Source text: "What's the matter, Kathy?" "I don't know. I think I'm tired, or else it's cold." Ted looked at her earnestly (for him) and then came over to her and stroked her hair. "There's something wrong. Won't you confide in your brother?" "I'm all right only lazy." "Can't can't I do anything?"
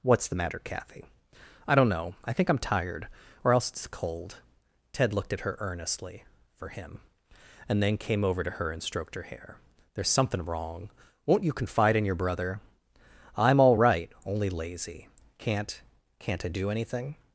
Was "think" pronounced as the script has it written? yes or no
yes